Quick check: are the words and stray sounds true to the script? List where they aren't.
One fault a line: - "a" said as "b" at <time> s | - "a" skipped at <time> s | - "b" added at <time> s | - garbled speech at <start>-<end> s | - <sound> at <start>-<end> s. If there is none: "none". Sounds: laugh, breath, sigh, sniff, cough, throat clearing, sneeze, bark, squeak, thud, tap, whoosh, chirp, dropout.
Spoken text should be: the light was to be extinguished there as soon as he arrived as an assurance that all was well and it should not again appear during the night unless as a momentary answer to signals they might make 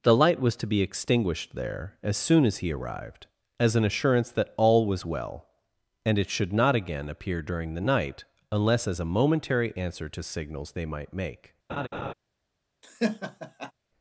- laugh at 11.7-12.1 s
- laugh at 12.8-13.7 s